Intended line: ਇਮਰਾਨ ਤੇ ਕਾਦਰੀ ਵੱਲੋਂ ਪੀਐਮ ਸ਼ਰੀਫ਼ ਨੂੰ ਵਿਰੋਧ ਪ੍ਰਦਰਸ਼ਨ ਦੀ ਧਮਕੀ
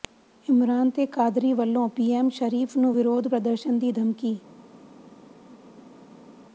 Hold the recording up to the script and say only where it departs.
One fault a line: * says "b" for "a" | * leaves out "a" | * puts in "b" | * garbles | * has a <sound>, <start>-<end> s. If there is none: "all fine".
all fine